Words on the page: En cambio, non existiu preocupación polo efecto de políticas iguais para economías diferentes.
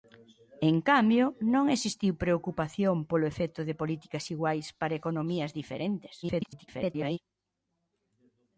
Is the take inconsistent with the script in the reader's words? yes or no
yes